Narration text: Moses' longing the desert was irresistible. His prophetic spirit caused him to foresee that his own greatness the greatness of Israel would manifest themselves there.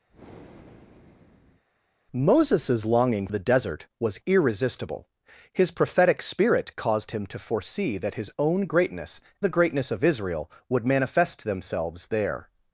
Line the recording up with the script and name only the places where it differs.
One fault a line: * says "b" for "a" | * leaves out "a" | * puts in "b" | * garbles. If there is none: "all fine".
all fine